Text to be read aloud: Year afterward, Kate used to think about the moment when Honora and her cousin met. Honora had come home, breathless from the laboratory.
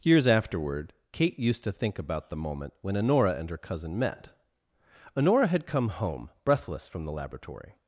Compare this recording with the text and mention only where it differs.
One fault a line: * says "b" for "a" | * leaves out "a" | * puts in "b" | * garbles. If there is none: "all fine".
* says "Years" for "Year"